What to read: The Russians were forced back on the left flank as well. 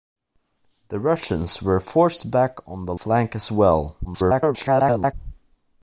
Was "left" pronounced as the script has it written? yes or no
no